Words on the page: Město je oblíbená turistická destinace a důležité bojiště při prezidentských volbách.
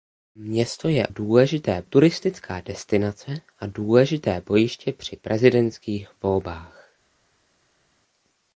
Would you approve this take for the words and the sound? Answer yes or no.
no